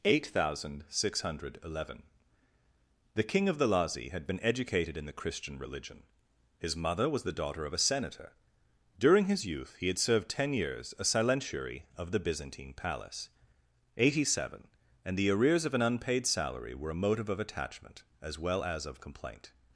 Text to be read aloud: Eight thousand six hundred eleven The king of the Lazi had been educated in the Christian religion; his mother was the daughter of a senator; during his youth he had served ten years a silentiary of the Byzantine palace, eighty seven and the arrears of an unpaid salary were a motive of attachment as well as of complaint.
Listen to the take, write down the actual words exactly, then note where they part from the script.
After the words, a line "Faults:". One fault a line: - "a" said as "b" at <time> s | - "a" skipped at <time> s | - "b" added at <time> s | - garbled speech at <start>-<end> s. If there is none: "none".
Eight thousand six hundred eleven The king of the Lazi had been educated in the Christian religion; his mother was the daughter of a senator; during his youth he had served ten years a silentiary of the Byzantine palace, eighty seven and the arrears of an unpaid salary were a motive of attachment as well as of complaint.
Faults:
none